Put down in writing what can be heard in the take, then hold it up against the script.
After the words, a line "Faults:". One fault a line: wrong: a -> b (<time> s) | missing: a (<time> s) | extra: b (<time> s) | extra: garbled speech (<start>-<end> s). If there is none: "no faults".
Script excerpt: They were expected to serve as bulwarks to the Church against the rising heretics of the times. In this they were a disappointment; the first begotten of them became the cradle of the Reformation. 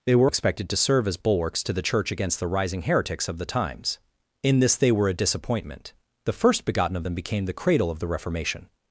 They were expected to serve as bulwarks to the Church against the rising heretics of the times. In this they were a disappointment; the first begotten of them became the cradle of the Reformation.
Faults:
no faults